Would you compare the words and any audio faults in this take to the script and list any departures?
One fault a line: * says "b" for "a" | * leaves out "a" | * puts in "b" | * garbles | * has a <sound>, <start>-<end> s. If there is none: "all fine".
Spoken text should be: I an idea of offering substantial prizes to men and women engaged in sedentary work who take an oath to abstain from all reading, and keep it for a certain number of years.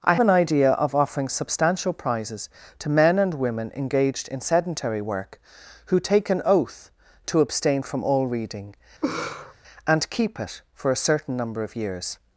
* has a laugh, 9.0-9.5 s